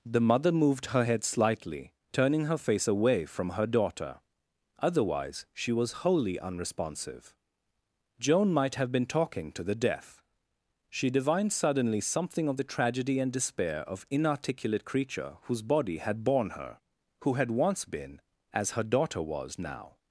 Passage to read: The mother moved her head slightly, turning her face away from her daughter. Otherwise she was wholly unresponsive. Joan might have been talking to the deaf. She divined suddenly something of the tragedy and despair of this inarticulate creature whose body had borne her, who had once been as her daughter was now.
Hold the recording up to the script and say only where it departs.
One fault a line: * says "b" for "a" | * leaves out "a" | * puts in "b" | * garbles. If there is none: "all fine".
* leaves out "this"